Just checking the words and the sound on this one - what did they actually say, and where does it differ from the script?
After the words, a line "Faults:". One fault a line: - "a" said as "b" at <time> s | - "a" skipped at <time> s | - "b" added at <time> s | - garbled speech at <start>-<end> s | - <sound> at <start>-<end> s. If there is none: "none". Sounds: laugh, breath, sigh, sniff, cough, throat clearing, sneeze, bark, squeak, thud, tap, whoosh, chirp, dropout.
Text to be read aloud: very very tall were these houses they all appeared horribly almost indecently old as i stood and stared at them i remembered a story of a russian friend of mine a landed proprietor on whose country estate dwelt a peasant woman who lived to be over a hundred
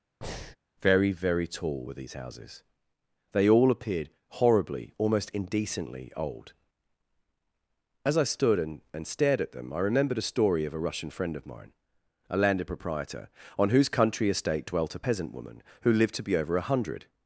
very very tall were these houses they all appeared horribly almost indecently old as i stood and and stared at them i remembered a story of a russian friend of mine a landed proprietor on whose country estate dwelt a peasant woman who lived to be over a hundred
Faults:
- breath at 0.2-0.6 s
- "and" added at 8.9 s